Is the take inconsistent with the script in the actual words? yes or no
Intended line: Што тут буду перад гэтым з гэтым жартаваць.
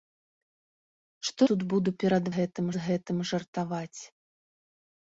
no